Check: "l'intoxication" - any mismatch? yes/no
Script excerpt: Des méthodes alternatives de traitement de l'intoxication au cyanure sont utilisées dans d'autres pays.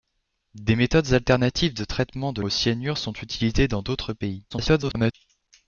yes